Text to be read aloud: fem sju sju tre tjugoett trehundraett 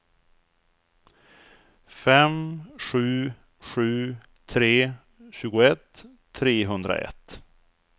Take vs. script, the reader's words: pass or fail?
pass